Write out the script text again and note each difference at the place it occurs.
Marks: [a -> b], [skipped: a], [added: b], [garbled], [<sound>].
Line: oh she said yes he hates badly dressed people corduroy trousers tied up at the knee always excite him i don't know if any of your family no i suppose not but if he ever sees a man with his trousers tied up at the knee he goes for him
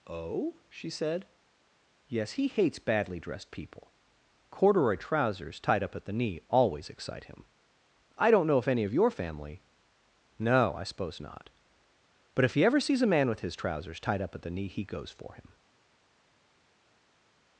oh she said yes he hates badly dressed people corduroy trousers tied up at the knee always excite him i don't know if any of your family no i suppose not but if he ever sees a man with his trousers tied up at the knee he goes for him